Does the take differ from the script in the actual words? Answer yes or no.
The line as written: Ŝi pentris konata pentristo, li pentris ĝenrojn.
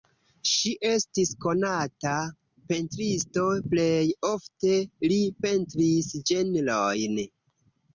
yes